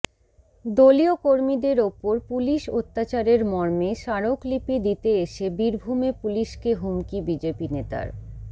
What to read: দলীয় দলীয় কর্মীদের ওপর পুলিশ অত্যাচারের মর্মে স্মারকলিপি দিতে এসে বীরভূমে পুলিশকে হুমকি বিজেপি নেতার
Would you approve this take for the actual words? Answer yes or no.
no